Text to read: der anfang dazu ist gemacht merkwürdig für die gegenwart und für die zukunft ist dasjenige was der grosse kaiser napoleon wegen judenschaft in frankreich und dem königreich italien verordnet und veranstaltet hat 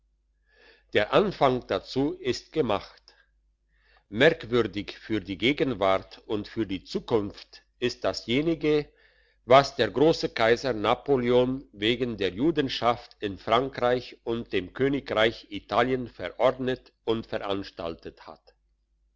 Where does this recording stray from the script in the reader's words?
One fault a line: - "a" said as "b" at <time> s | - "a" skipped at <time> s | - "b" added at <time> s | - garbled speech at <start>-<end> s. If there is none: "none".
- "der" added at 12.2 s